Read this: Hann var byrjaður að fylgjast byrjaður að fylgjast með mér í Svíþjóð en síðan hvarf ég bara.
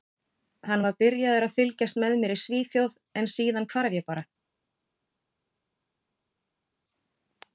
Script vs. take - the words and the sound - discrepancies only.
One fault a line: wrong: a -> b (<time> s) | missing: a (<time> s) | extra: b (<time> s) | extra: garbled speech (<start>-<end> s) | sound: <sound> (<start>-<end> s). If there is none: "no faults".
missing: byrjaður að fylgjast (2.0 s)